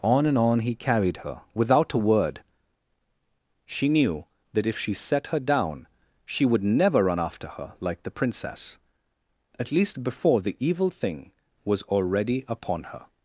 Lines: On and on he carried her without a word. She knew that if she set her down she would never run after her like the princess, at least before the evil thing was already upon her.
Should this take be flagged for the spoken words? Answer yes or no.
no